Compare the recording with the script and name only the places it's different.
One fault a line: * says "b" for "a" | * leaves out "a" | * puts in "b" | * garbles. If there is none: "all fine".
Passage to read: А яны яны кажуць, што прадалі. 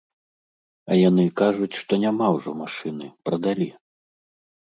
* leaves out "яны"
* puts in "няма ўжо машыны"